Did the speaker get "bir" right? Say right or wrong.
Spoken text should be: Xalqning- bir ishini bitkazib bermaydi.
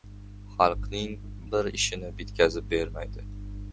right